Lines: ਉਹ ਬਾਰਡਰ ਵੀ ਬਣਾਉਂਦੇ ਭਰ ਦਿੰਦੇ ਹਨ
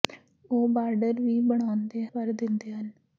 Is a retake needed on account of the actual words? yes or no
no